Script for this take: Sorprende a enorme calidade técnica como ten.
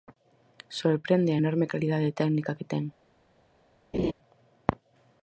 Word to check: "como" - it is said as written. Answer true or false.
false